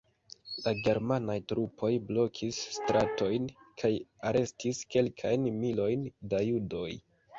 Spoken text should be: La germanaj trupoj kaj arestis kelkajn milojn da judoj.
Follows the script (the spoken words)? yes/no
no